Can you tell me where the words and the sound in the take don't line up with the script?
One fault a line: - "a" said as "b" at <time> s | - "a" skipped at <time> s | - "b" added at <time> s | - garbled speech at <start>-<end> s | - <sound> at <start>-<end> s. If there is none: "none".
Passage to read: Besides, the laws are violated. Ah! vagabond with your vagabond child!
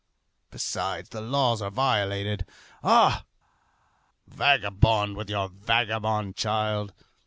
none